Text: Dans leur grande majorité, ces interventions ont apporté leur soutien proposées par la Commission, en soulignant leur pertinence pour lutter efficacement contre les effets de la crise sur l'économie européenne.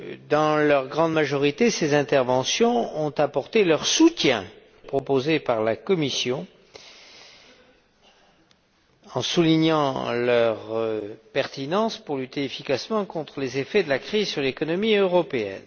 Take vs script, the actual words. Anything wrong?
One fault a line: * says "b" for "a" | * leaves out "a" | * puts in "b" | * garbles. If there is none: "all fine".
all fine